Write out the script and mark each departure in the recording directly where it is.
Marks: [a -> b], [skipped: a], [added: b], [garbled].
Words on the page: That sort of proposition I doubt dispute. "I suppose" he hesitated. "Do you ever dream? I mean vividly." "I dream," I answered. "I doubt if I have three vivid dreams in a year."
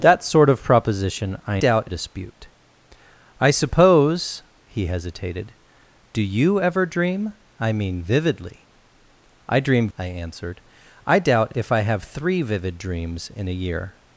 That sort of proposition I doubt dispute. "I suppose" he hesitated. "Do you ever dream? I mean vividly." "I dream," I answered. "I doubt if I have three vivid dreams in a year."